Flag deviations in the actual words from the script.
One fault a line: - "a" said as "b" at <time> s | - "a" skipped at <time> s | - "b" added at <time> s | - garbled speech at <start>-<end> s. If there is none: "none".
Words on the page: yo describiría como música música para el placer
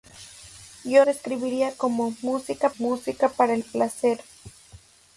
none